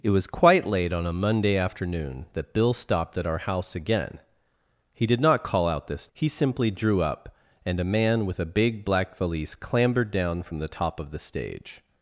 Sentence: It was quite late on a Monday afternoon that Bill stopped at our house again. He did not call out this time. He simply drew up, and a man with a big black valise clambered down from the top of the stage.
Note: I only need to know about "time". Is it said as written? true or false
false